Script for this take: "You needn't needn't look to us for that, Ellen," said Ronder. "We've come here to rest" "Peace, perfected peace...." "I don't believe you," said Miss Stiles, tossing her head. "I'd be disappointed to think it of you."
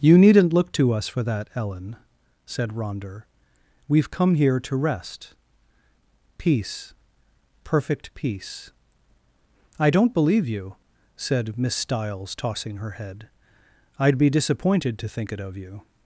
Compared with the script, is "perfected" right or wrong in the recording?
wrong